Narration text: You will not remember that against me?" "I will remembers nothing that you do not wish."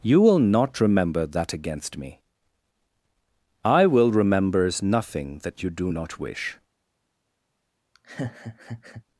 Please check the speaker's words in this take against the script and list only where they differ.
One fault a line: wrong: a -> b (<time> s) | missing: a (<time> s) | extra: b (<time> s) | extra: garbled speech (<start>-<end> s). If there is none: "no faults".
no faults